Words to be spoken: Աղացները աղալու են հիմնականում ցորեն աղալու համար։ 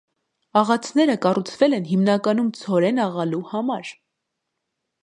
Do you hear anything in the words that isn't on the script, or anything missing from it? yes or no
yes